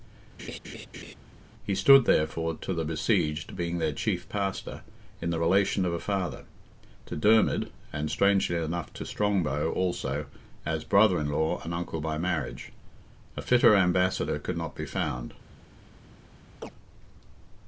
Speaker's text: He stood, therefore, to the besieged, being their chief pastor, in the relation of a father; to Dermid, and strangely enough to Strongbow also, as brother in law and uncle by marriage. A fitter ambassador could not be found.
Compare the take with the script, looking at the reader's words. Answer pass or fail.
pass